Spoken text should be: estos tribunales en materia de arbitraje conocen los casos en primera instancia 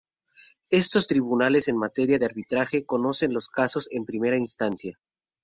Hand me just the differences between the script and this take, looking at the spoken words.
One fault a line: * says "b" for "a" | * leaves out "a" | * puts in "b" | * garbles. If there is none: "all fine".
all fine